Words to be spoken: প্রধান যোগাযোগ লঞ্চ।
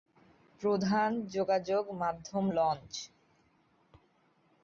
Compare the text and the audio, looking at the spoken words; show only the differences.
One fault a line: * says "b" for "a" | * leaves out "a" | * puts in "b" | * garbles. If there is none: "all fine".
* puts in "মাধ্যম"